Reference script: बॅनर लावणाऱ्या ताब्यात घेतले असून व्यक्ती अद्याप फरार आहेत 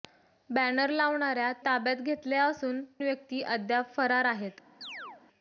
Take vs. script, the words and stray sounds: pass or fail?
fail